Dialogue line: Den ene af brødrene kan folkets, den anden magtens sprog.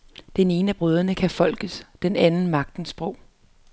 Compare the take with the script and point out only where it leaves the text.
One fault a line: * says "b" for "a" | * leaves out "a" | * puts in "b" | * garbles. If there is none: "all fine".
all fine